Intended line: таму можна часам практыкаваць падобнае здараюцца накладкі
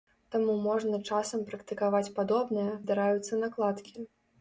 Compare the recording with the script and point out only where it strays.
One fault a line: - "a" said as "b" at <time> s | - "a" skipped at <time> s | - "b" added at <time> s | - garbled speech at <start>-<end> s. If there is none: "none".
none